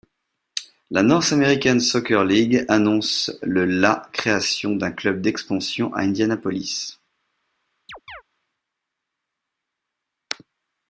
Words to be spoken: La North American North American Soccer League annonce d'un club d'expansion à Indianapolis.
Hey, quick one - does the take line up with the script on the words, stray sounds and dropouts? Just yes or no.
no